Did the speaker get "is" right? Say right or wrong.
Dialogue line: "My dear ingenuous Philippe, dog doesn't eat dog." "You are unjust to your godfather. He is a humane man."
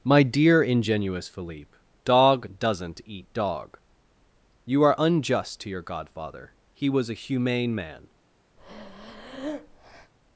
wrong